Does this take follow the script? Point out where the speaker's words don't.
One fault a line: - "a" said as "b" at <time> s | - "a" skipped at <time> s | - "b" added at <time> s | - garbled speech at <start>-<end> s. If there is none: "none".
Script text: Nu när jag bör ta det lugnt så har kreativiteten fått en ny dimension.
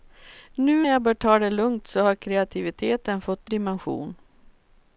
- "när" skipped at 0.8 s
- "en ny" skipped at 3.5 s